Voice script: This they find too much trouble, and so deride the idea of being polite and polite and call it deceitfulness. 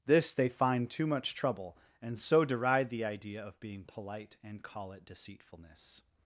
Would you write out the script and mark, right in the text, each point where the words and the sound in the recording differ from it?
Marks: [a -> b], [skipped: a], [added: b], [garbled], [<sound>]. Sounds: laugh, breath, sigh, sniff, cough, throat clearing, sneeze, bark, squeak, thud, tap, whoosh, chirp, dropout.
This they find too much trouble, and so deride the idea of being polite and [skipped: polite and] call it deceitfulness.